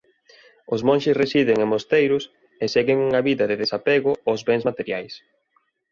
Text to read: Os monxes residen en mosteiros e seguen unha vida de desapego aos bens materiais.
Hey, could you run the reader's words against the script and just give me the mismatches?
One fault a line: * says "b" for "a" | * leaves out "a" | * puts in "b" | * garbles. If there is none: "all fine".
all fine